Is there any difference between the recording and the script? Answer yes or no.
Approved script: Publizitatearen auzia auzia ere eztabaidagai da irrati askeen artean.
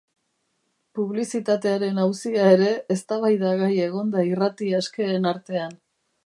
yes